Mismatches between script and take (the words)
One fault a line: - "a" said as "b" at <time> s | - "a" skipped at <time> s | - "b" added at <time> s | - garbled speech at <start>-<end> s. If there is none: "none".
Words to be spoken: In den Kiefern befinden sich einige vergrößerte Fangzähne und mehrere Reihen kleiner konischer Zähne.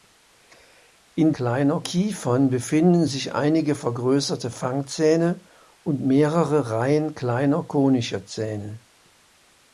- "den" said as "kleiner" at 1.3 s